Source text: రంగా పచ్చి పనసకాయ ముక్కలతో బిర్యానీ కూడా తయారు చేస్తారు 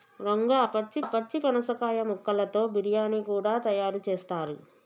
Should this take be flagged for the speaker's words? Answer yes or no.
yes